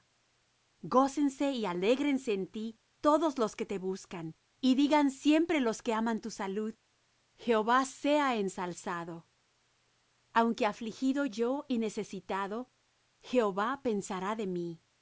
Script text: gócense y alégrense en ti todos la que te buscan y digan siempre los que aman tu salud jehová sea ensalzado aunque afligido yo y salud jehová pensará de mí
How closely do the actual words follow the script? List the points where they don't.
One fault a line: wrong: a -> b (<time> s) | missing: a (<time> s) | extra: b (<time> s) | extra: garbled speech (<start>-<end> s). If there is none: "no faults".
wrong: la -> los (3.4 s)
wrong: salud -> necesitado (11.8 s)